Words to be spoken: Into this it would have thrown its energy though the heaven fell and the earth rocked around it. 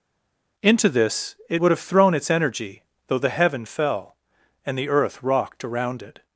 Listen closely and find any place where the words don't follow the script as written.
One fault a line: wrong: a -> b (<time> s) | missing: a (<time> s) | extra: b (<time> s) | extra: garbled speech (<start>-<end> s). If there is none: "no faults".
no faults